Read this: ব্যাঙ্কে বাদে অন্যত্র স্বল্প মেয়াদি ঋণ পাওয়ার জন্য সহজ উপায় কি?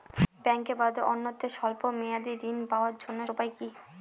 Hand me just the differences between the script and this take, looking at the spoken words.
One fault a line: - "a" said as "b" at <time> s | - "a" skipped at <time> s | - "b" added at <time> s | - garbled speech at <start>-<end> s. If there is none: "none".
- "সহজ" skipped at 3.2 s